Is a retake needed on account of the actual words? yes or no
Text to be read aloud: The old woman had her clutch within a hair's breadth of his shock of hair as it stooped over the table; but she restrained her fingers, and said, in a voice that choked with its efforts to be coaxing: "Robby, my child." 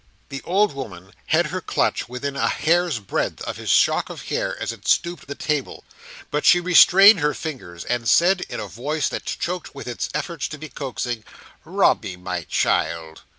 yes